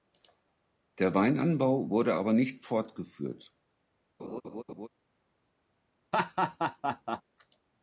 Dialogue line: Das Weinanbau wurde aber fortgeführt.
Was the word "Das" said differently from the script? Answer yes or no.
yes